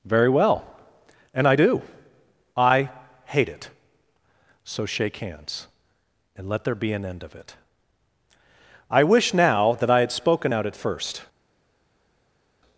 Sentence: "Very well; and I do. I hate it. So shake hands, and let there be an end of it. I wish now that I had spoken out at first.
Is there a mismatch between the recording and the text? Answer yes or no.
no